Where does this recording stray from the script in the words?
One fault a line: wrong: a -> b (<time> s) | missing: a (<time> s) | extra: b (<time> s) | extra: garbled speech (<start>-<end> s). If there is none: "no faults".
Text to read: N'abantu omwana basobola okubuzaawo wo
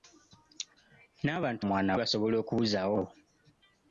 no faults